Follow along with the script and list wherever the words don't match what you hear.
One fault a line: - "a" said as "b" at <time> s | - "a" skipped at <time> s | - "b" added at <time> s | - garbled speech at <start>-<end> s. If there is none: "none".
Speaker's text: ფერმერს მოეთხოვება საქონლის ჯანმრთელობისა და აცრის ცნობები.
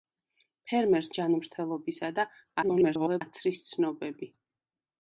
- "მოეთხოვება საქონლის" skipped at 1.1 s
- garbled speech at 2.6-3.2 s